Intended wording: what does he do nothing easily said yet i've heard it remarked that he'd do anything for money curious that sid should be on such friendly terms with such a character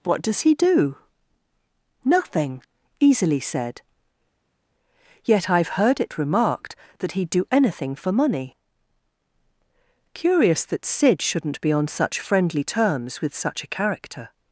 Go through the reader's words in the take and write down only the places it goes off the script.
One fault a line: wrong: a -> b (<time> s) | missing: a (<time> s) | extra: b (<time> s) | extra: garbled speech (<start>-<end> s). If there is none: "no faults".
wrong: should -> shouldn't (11.2 s)